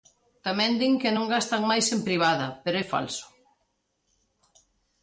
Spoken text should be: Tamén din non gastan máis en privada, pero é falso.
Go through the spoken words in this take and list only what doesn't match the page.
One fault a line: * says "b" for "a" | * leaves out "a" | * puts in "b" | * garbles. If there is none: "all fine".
* puts in "que"